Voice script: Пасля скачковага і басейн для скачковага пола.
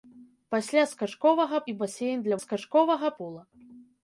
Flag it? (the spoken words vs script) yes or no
no